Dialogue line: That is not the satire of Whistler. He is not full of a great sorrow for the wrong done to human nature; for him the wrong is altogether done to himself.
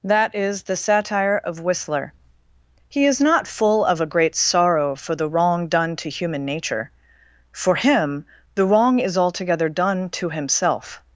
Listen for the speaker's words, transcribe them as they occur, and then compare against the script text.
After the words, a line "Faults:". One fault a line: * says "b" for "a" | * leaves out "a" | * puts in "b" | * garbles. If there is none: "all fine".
That is the satire of Whistler. He is not full of a great sorrow for the wrong done to human nature; for him the wrong is altogether done to himself.
Faults:
* leaves out "not"